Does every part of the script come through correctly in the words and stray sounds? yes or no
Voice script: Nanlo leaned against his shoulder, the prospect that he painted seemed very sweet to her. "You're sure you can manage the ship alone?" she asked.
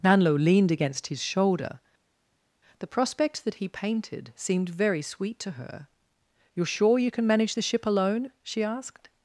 yes